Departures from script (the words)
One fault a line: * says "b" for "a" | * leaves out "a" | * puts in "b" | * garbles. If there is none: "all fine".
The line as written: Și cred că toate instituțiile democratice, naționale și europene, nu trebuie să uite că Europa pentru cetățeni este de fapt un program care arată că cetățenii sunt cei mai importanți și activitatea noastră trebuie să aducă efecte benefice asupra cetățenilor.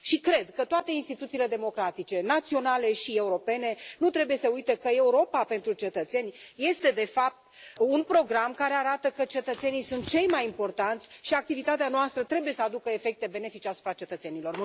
all fine